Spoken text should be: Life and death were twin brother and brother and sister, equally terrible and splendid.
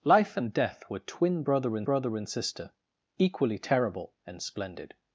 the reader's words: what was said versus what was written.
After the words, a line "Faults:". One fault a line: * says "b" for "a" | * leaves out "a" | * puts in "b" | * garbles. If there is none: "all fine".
Life and death were twin brother and brother and sister, equally terrible and splendid.
Faults:
all fine